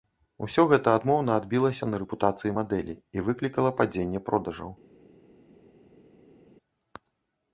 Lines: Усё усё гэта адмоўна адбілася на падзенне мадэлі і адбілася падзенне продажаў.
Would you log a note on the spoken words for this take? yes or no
yes